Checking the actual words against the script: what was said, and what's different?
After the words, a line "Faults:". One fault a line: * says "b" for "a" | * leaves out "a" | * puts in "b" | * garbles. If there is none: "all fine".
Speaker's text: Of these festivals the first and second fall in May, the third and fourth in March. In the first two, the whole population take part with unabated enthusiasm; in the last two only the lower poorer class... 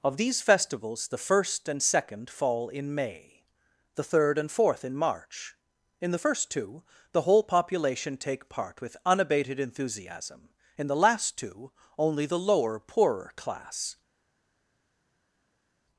Of these festivals the first and second fall in May, the third and fourth in March. In the first two, the whole population take part with unabated enthusiasm; in the last two only the lower poorer class...
Faults:
all fine